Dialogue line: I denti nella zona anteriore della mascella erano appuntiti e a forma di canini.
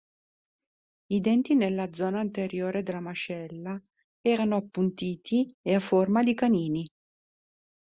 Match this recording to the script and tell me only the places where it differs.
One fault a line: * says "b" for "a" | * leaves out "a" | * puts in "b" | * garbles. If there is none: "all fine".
all fine